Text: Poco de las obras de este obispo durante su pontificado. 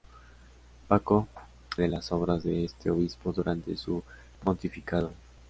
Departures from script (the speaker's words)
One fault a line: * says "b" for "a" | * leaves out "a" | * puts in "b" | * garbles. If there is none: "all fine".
all fine